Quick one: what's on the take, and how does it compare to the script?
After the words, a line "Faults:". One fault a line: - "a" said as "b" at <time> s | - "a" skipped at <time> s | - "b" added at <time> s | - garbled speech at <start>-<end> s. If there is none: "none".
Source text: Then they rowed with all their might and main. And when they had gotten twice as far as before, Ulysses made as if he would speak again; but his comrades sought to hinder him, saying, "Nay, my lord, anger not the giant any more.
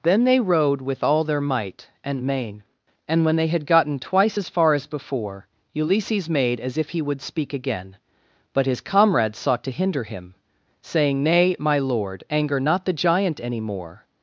Then they rowed with all their might and main. And when they had gotten twice as far as before, Ulysses made as if he would speak again; but his comrades sought to hinder him, saying, "Nay, my lord, anger not the giant any more.
Faults:
none